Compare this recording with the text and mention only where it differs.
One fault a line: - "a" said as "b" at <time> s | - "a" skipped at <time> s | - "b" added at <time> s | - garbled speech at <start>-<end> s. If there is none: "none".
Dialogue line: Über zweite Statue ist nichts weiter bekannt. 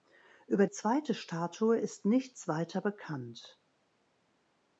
none